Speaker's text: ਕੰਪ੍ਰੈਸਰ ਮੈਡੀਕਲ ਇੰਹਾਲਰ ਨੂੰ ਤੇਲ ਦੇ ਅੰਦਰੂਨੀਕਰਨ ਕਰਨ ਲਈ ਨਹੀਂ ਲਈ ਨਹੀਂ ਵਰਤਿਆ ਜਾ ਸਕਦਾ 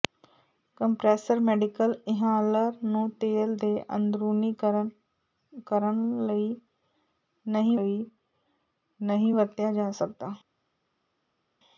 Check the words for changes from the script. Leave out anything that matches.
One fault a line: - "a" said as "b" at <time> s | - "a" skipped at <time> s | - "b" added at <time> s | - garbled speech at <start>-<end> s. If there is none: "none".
none